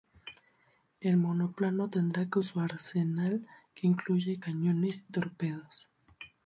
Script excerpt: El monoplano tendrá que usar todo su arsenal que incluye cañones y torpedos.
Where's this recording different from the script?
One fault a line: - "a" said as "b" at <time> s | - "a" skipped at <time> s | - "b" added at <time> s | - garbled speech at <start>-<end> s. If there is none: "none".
- "usar todo" skipped at 2.4 s
- "y" skipped at 5.1 s